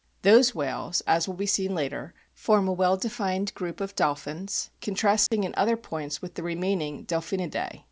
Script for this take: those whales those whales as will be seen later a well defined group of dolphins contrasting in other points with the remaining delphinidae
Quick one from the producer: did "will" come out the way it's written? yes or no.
yes